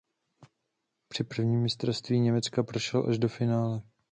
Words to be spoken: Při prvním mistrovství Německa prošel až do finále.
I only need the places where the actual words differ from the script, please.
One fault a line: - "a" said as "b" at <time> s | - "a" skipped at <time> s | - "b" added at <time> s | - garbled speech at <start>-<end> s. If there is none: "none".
none